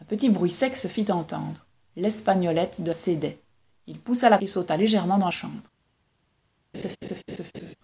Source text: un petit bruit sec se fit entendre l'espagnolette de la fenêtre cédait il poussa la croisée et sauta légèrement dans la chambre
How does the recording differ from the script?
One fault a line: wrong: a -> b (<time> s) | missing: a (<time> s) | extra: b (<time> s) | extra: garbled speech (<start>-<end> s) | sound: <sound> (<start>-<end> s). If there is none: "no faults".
missing: la fenêtre (2.9 s)
missing: croisée (4.4 s)
missing: la (5.3 s)
sound: laugh (6.7-7.8 s)